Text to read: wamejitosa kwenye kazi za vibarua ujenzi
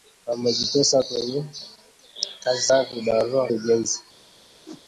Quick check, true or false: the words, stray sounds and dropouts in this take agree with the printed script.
false